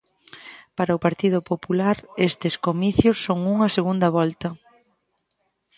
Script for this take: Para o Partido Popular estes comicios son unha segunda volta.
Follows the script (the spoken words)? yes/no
yes